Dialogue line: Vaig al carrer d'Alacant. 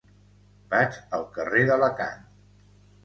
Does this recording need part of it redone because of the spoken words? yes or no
no